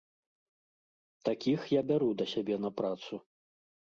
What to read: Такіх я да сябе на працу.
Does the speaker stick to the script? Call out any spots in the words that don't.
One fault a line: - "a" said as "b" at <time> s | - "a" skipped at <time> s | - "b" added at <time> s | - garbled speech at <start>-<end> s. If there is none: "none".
- "бяру" added at 1.9 s